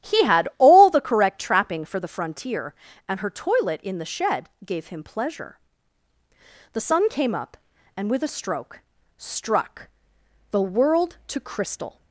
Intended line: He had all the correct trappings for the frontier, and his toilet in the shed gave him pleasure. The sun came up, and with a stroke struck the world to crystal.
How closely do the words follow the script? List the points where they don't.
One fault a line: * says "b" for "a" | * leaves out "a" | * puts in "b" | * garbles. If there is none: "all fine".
* says "trapping" for "trappings"
* says "her" for "his"